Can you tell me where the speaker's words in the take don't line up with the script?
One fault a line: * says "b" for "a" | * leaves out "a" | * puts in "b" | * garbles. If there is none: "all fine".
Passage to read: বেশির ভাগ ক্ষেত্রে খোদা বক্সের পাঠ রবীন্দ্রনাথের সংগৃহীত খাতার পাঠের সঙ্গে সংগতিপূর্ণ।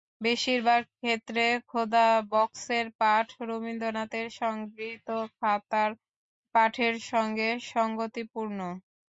all fine